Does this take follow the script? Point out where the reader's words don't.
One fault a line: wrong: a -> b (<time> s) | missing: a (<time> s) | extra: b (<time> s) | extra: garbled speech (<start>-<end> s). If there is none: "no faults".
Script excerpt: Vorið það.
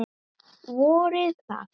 no faults